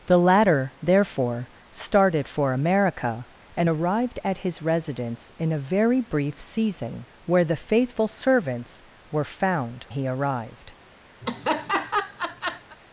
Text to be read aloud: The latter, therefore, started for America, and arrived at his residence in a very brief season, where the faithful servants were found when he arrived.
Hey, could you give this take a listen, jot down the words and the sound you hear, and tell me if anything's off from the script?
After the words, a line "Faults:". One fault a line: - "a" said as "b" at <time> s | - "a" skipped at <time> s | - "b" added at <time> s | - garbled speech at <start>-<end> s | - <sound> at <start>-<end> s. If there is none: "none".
The latter, therefore, started for America, and arrived at his residence in a very brief season, where the faithful servants were found he arrived.
Faults:
- "when" skipped at 9.9 s
- laugh at 11.2-12.8 s